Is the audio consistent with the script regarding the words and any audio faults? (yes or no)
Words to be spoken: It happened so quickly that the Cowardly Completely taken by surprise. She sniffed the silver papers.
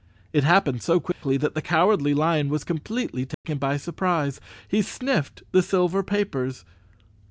no